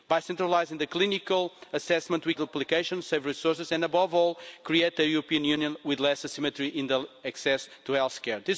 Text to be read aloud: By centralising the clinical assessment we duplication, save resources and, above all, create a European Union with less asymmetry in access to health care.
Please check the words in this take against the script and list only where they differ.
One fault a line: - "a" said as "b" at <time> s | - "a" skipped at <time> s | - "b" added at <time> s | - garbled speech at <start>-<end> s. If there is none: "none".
none